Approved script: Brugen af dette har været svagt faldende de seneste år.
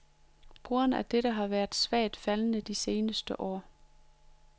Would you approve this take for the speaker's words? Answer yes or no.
yes